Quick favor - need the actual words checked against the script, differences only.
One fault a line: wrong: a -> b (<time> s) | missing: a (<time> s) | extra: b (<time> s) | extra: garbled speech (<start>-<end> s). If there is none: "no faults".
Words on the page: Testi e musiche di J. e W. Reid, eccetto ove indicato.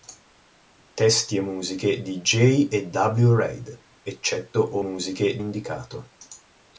wrong: ove -> musiche (4.8 s)